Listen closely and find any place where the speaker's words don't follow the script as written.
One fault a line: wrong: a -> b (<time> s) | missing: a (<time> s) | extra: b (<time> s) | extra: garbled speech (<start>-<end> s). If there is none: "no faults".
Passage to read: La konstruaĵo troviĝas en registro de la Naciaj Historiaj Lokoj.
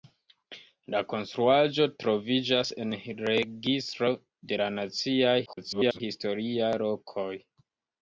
extra: garbled speech (5.5-6.0 s)